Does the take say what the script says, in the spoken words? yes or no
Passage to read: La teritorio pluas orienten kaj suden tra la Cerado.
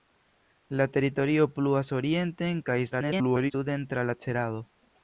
no